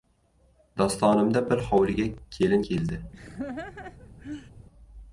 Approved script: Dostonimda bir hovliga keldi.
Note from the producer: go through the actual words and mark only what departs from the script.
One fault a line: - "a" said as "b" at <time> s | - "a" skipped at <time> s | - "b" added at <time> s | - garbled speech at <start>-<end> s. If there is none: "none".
- "kelin" added at 2.3 s